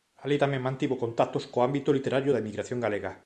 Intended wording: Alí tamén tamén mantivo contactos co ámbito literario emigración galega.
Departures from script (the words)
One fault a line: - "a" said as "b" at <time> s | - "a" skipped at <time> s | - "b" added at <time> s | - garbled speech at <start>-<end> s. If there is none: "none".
- "tamén" skipped at 0.6 s
- "da" added at 2.3 s